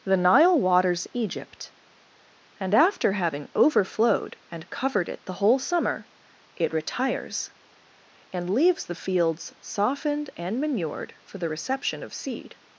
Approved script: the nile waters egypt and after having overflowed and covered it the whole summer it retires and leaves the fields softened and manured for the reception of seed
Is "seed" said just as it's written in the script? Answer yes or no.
yes